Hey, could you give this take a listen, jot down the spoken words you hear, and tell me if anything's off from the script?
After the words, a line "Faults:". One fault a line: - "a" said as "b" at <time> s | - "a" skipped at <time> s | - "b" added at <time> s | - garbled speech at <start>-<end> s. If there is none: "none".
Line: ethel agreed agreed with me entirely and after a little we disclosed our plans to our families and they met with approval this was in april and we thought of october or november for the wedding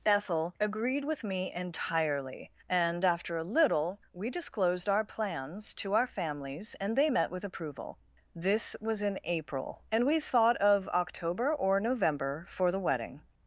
ethel agreed with me entirely and after a little we disclosed our plans to our families and they met with approval this was in april and we thought of october or november for the wedding
Faults:
- "agreed" skipped at 1.1 s